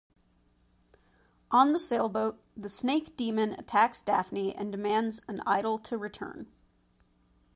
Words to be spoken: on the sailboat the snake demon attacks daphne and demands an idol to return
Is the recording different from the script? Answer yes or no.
no